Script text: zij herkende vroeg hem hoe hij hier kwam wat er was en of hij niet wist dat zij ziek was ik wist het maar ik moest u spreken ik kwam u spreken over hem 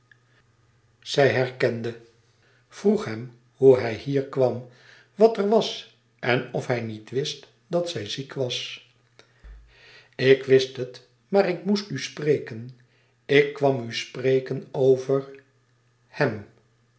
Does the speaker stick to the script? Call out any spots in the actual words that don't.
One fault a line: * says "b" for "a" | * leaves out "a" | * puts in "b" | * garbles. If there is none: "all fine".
all fine